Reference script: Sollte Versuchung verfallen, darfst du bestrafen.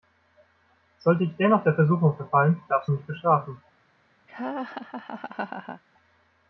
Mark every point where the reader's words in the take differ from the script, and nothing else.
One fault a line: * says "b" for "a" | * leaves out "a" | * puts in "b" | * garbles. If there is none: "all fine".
* puts in "ich dennoch der"
* puts in "mich"